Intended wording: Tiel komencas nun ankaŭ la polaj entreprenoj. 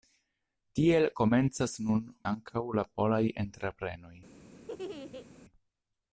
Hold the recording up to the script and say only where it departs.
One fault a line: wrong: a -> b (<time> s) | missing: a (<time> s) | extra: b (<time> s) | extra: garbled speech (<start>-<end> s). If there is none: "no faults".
no faults